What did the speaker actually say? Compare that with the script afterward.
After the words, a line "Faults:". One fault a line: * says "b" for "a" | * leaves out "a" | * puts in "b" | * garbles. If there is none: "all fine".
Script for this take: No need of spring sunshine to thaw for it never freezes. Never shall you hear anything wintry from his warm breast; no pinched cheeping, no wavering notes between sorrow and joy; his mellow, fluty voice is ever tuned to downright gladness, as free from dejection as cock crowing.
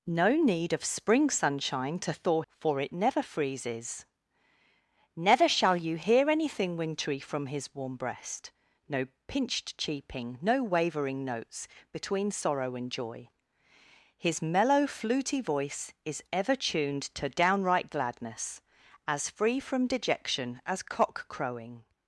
No need of spring sunshine to thaw for it never freezes. Never shall you hear anything wintry from his warm breast; no pinched cheeping, no wavering notes between sorrow and joy; his mellow, fluty voice is ever tuned to downright gladness, as free from dejection as cock crowing.
Faults:
all fine